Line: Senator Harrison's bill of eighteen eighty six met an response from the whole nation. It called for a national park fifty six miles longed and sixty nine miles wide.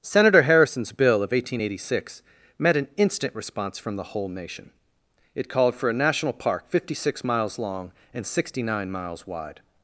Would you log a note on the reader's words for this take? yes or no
yes